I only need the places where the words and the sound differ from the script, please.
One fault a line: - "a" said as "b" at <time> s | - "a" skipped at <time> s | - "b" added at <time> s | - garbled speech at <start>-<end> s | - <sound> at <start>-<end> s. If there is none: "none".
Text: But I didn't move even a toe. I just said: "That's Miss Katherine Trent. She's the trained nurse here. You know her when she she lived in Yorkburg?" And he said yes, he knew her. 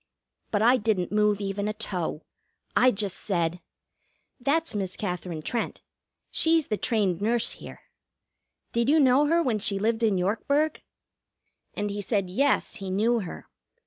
- "Did" added at 8.7 s
- "she" skipped at 9.8 s